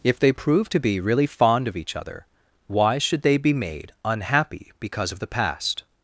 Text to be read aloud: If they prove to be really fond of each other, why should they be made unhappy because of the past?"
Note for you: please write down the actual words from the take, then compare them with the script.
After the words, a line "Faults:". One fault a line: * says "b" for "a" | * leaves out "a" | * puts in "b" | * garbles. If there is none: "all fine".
If they prove to be really fond of each other, why should they be made unhappy because of the past?"
Faults:
all fine